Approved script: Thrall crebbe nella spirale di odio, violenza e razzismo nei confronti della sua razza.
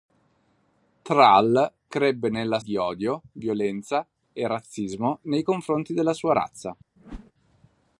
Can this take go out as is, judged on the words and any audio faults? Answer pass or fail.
fail